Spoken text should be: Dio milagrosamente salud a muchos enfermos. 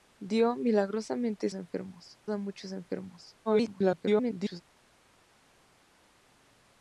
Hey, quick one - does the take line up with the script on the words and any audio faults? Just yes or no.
no